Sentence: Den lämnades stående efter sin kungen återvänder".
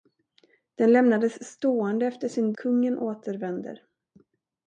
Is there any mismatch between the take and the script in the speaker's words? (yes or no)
no